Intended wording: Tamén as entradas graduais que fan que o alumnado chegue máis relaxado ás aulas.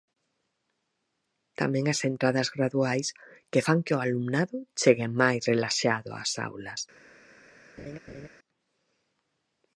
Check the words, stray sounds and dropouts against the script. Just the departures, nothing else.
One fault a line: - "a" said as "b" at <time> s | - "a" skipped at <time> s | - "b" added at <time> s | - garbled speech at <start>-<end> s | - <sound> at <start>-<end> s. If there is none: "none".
- laugh at 7.8-8.3 s